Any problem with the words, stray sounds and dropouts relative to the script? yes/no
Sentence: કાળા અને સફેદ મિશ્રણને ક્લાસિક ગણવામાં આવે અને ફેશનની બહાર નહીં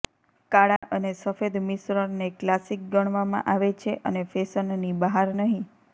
yes